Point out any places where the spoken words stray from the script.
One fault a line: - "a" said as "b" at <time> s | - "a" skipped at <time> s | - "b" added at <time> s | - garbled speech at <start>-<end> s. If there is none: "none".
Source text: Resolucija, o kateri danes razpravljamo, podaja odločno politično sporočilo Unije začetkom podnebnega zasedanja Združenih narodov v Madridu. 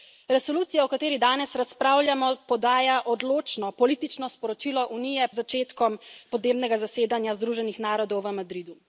none